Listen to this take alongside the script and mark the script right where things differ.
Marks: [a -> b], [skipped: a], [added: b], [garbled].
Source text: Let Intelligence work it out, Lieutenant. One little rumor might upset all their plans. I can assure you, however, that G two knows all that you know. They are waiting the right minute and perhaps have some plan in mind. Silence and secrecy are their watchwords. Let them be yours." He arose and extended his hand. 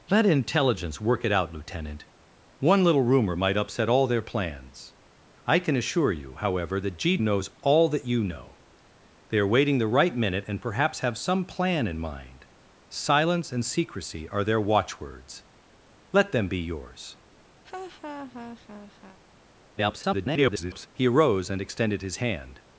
Let Intelligence work it out, Lieutenant. One little rumor might upset all their plans. I can assure you, however, that G [skipped: two] knows all that you know. They are waiting the right minute and perhaps have some plan in mind. Silence and secrecy are their watchwords. Let them be yours." [garbled] He arose and extended his hand.